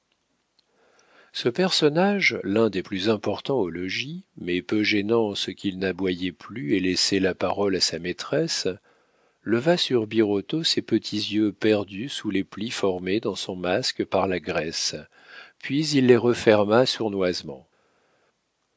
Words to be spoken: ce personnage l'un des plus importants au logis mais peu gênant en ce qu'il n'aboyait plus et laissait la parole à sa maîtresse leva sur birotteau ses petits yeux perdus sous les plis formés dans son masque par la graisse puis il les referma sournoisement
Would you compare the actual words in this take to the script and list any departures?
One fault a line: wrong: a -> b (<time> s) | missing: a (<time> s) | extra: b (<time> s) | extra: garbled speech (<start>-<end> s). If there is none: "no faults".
no faults